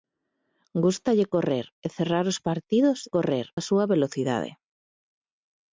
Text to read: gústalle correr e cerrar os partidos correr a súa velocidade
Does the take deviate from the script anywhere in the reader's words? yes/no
no